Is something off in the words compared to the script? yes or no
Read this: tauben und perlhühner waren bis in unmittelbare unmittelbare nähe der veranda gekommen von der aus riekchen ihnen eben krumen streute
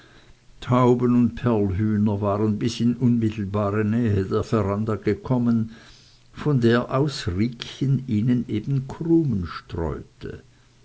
yes